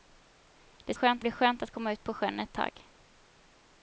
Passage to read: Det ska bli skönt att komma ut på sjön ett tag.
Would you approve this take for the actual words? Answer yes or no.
no